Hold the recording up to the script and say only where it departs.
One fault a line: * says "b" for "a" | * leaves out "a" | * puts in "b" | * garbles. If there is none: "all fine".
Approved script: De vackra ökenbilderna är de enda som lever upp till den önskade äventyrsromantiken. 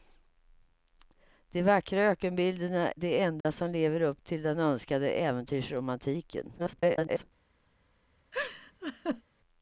* leaves out "är"
* garbles